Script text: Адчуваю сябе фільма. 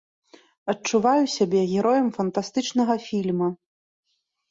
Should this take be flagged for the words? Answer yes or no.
yes